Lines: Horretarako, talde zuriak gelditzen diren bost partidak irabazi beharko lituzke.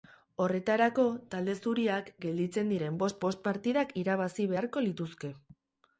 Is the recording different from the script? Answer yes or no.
yes